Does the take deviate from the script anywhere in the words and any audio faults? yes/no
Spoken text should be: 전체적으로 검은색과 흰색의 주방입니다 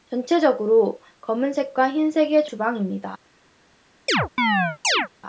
yes